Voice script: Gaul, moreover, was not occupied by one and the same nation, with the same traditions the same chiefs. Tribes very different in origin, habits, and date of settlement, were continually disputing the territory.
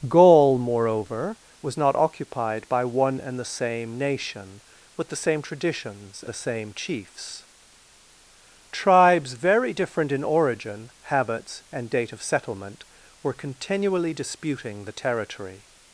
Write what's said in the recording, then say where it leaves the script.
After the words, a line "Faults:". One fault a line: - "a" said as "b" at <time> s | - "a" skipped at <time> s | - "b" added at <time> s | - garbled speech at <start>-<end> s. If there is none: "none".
Gaul, moreover, was not occupied by one and the same nation, with the same traditions the same chiefs. Tribes very different in origin, habits, and date of settlement, were continually disputing the territory.
Faults:
none